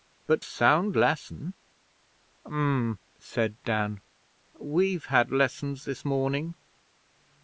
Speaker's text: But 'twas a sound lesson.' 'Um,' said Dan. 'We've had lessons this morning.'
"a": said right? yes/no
no